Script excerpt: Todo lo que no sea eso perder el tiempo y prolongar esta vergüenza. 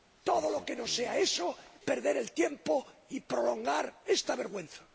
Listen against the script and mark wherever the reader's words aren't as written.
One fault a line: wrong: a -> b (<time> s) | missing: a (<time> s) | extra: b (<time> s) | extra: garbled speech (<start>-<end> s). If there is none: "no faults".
no faults